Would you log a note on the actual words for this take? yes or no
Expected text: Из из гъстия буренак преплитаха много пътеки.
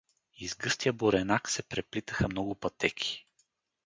yes